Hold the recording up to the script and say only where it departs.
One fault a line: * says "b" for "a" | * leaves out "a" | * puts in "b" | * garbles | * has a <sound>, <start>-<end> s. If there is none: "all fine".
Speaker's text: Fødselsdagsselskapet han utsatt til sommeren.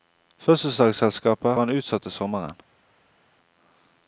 all fine